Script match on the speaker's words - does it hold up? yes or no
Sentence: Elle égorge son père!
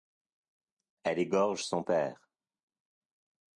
yes